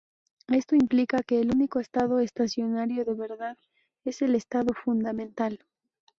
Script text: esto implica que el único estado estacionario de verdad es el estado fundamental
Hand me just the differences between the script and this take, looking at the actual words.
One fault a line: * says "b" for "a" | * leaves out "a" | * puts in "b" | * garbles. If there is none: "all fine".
all fine